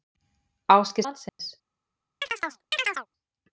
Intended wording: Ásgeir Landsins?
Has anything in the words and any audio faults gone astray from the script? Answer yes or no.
yes